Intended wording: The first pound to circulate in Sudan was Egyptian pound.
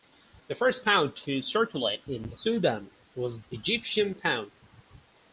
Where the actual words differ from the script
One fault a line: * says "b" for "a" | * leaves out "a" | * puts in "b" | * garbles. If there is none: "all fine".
all fine